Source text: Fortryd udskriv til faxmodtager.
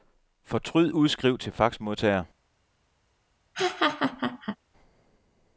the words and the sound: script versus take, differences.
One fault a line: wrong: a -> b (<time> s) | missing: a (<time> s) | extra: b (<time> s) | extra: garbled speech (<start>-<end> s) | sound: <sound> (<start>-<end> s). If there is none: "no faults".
sound: laugh (3.5-4.6 s)